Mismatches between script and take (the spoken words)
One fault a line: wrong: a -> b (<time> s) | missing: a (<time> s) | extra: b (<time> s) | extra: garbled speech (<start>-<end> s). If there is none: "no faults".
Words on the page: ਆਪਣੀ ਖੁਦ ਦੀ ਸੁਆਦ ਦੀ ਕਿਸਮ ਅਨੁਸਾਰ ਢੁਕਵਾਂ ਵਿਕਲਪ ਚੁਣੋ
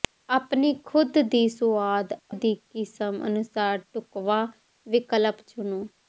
no faults